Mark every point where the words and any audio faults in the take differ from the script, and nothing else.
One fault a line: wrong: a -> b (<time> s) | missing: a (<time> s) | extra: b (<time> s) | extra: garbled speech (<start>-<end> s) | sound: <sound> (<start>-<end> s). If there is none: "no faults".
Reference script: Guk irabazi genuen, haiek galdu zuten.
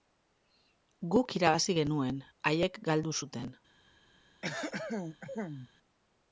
sound: throat clearing (4.4-5.7 s)